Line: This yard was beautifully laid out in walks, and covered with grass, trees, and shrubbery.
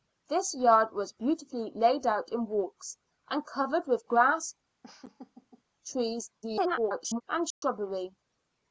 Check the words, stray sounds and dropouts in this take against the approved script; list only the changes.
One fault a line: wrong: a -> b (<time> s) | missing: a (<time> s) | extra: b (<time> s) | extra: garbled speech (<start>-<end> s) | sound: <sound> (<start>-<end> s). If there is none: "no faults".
sound: laugh (4.8-5.6 s)
extra: garbled speech (6.4-7.2 s)
sound: dropout (7.5-7.6 s)